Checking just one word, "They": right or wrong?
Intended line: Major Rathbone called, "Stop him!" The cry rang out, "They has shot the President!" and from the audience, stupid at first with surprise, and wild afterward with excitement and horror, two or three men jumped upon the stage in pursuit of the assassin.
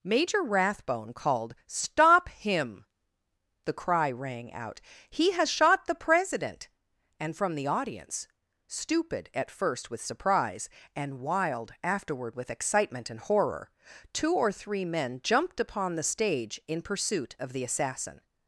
wrong